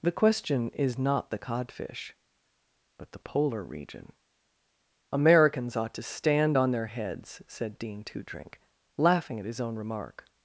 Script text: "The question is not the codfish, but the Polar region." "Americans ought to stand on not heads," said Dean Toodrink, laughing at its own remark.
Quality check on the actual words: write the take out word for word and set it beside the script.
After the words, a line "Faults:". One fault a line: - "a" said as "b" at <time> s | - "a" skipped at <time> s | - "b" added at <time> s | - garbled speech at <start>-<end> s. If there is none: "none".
"The question is not the codfish, but the Polar region." "Americans ought to stand on their heads," said Dean Toodrink, laughing at his own remark.
Faults:
- "not" said as "their" at 6.7 s
- "its" said as "his" at 9.5 s